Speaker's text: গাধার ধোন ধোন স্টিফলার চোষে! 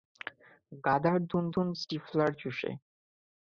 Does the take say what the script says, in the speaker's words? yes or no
yes